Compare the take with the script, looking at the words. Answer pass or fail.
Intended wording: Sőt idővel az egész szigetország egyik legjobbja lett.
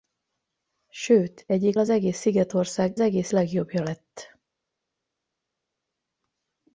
fail